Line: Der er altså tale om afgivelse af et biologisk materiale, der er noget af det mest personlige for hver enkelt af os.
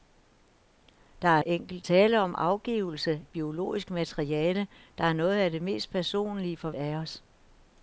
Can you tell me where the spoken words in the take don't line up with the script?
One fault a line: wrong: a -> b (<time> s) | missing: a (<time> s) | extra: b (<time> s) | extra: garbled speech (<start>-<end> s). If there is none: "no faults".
wrong: altså -> enkelt (1.5 s)
missing: af (3.2 s)
missing: hver enkelt (6.7 s)